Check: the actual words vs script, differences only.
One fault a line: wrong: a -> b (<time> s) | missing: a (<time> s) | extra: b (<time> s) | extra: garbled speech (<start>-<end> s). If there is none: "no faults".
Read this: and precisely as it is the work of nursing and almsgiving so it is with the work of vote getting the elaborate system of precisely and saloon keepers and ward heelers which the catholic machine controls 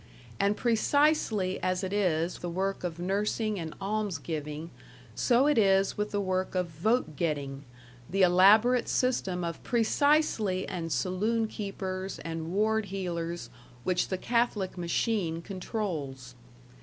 no faults